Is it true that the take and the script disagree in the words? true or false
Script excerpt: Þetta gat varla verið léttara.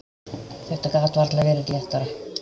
false